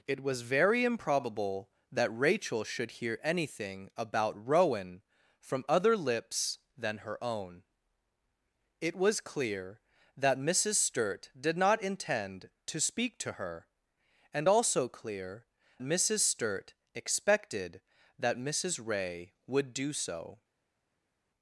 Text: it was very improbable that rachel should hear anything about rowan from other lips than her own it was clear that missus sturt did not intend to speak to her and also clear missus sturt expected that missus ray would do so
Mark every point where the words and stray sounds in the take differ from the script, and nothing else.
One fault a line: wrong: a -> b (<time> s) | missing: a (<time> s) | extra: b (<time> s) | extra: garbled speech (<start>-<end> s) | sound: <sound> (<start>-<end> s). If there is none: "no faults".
no faults